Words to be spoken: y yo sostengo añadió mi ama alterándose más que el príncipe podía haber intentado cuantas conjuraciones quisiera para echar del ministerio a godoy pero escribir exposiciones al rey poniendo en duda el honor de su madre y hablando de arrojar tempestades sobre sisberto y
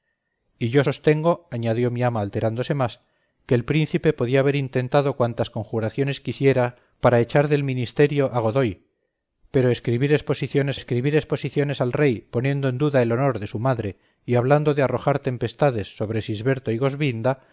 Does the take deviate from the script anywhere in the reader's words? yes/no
yes